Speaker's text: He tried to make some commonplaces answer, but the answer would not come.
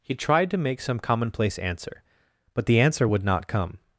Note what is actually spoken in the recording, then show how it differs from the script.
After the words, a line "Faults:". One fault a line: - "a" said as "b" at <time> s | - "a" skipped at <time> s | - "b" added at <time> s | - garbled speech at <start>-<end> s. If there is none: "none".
He tried to make some commonplace answer, but the answer would not come.
Faults:
- "commonplaces" said as "commonplace" at 1.0 s